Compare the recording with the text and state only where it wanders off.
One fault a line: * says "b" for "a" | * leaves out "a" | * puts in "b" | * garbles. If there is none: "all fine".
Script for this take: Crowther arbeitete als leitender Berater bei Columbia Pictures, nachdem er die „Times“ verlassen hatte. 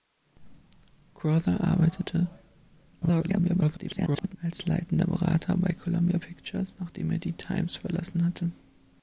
* garbles